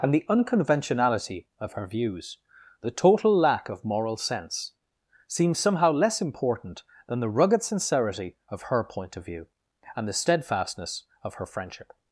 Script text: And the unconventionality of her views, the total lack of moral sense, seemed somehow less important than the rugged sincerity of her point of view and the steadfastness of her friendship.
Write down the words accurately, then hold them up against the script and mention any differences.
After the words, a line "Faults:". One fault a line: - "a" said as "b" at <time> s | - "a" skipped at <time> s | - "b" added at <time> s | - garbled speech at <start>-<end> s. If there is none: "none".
And the unconventionality of her views, the total lack of moral sense, seems somehow less important than the rugged sincerity of her point of view and the steadfastness of her friendship.
Faults:
- "seemed" said as "seems" at 5.3 s